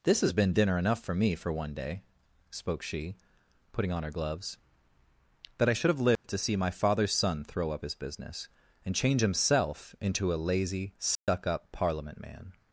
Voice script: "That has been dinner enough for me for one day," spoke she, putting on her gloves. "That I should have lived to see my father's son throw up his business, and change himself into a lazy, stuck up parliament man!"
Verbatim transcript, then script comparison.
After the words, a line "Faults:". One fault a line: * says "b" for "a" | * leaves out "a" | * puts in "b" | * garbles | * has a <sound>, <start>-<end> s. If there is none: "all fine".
"This has been dinner enough for me for one day," spoke she, putting on her gloves. "That I should have lived to see my father's son throw up his business, and change himself into a lazy, stuck up parliament man!"
Faults:
* says "This" for "That"
* has a dropout, 6.2-6.2 s
* has a dropout, 11.1-11.3 s